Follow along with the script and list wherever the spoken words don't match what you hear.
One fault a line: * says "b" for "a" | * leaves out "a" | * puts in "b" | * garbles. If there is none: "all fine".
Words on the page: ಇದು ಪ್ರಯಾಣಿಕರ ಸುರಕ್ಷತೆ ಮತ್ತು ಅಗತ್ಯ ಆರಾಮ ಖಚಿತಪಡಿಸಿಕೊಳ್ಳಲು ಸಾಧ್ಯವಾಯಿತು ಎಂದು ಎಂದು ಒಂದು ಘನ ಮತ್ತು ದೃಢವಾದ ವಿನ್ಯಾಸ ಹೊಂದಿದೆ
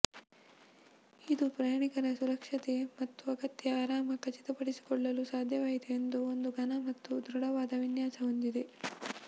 * leaves out "ಎಂದು"